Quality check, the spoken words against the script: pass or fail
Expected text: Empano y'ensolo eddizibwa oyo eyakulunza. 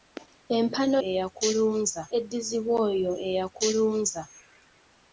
fail